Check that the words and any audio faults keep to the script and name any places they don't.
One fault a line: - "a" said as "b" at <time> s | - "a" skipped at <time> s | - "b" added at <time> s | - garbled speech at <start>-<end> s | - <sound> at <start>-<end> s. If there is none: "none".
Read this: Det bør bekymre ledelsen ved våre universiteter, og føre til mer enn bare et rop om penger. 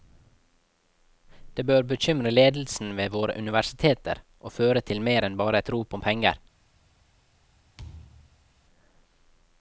- thud at 7.8-8.5 s